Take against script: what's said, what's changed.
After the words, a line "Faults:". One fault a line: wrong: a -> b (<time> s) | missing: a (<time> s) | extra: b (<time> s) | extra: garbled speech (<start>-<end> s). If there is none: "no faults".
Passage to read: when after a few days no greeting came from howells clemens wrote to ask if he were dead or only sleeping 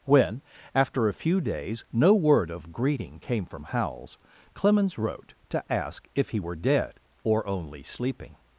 when after a few days no word of greeting came from howells clemens wrote to ask if he were dead or only sleeping
Faults:
extra: word of (2.1 s)